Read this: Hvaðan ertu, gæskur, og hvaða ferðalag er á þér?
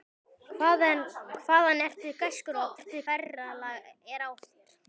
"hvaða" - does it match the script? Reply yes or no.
no